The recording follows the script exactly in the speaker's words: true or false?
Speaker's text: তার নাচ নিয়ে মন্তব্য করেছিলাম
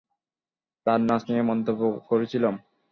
true